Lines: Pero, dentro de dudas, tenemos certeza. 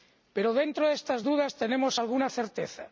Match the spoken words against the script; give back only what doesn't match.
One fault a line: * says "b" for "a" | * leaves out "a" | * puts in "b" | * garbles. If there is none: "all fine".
* puts in "estas"
* puts in "alguna"